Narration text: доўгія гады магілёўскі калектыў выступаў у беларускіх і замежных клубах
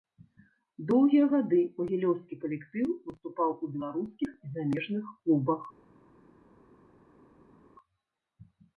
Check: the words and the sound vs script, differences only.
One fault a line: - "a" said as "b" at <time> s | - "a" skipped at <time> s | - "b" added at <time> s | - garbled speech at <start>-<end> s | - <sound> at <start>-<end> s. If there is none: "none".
none